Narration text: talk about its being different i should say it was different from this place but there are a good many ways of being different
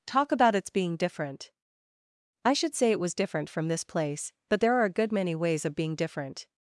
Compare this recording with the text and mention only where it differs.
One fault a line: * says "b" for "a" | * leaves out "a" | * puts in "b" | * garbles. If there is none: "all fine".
all fine